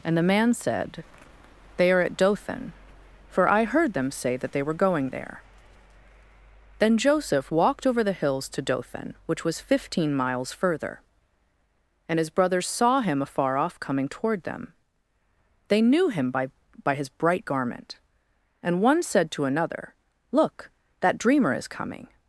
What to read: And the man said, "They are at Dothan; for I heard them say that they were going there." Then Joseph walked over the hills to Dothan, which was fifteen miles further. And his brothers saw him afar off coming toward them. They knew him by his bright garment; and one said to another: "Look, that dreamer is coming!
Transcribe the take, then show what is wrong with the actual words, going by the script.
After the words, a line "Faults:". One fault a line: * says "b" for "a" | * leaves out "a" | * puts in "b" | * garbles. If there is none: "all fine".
And the man said, "They are at Dothan; for I heard them say that they were going there." Then Joseph walked over the hills to Dothan, which was fifteen miles further. And his brothers saw him afar off coming toward them. They knew him by by his bright garment; and one said to another: "Look, that dreamer is coming!
Faults:
* puts in "by"